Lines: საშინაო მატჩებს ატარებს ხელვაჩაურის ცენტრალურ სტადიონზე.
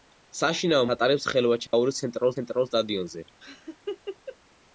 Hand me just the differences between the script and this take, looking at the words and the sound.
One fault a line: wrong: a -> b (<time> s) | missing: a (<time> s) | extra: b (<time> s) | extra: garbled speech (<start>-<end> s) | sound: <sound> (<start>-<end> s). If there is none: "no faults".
missing: მატჩებს (0.9 s)
sound: dropout (1.7-1.7 s)
extra: ცენტრალურ (2.4 s)
sound: laugh (3.4-4.4 s)